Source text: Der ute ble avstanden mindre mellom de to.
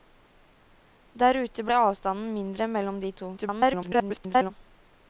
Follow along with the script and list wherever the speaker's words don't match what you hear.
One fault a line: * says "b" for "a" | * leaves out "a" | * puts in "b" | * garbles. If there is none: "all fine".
* garbles